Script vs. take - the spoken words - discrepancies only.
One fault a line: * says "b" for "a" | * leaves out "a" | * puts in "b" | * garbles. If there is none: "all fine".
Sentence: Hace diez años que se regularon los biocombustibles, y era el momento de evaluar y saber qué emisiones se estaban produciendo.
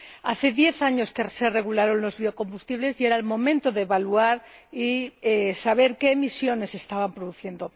all fine